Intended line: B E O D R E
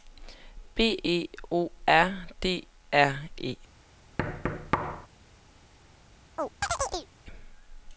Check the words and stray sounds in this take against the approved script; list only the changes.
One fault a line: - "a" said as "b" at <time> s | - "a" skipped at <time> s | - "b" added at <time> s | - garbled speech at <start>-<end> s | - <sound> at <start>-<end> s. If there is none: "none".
- "R" added at 1.9 s
- thud at 4.2-5.1 s
- chirp at 6.4-7.1 s